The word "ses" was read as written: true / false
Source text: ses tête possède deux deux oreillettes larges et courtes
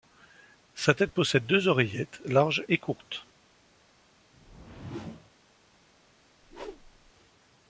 false